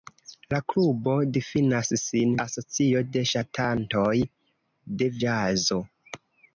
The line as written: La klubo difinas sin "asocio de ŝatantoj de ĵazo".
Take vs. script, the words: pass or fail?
pass